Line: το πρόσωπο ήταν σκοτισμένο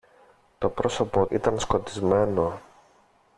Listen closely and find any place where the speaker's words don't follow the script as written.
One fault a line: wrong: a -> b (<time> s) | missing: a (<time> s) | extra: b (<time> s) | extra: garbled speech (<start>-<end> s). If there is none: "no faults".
no faults